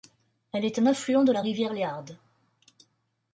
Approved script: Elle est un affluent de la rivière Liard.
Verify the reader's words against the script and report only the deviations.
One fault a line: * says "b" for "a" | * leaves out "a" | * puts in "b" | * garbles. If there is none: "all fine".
all fine